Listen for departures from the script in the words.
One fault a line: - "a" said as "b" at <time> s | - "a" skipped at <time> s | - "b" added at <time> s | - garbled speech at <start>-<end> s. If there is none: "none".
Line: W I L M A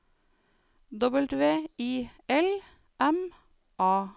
none